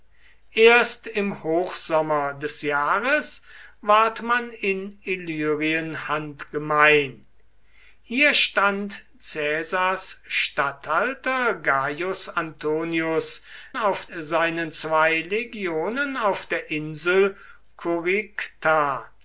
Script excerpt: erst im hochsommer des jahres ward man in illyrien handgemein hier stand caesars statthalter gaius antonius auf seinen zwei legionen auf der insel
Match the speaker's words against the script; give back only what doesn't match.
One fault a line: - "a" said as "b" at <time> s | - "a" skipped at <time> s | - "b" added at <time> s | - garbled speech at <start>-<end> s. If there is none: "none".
none